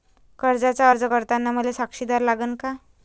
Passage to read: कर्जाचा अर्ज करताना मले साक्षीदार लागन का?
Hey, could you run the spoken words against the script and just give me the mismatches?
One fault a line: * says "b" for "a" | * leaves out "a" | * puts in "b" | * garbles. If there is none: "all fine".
all fine